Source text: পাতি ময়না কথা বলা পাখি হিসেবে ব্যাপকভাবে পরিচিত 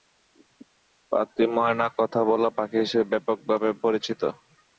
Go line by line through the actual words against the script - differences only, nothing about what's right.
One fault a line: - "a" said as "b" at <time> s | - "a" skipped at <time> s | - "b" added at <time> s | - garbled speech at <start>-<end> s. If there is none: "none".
none